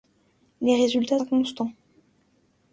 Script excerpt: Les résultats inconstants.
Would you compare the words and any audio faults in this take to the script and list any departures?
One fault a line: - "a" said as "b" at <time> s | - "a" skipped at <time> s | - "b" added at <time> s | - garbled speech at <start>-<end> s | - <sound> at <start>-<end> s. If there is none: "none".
none